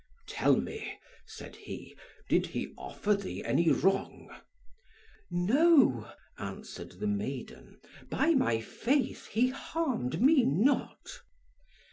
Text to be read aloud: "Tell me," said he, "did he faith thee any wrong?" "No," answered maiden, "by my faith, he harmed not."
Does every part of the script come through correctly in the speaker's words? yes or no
no